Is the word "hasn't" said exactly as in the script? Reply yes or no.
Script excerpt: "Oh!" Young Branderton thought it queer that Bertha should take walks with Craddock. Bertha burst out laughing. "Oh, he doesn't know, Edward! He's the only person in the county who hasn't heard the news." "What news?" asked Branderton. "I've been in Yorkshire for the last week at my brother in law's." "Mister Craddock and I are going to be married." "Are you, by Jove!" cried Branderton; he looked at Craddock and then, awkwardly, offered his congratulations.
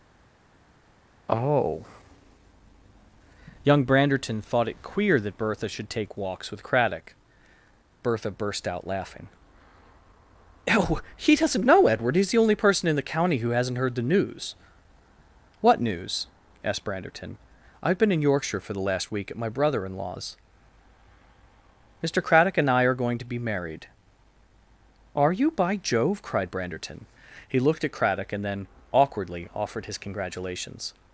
yes